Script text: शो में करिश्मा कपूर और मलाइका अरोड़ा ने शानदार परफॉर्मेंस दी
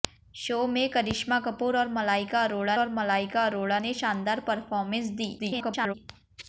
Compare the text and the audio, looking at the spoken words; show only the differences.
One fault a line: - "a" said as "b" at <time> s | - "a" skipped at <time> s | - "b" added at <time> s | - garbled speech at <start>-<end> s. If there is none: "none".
- "और मलाइका अरोड़ा" added at 2.8 s
- garbled speech at 5.4-5.9 s